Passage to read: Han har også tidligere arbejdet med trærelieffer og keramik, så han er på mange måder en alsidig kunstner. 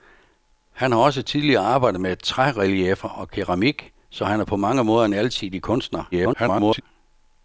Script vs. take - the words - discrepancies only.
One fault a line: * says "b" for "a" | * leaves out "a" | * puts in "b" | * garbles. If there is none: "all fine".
* garbles